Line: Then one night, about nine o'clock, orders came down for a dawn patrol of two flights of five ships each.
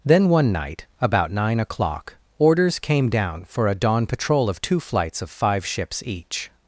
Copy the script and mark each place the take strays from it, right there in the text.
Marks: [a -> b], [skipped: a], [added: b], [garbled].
Then one night, about nine o'clock, orders came down for a dawn patrol of two flights of five ships each.